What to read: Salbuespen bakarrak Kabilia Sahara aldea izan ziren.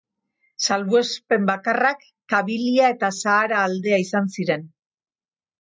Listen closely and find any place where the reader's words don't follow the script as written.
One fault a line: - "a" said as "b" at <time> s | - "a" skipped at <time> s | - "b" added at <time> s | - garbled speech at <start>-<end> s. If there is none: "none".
- "eta" added at 3.0 s